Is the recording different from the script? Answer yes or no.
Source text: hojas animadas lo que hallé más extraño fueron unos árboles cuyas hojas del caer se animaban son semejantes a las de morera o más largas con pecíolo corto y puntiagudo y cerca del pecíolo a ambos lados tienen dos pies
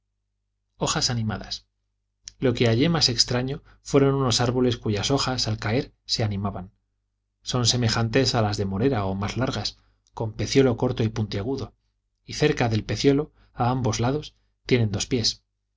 yes